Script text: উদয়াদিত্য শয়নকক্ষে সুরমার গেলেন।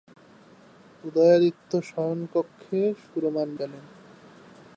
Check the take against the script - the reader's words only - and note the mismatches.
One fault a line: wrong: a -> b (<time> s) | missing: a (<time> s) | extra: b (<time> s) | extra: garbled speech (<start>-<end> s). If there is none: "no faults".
no faults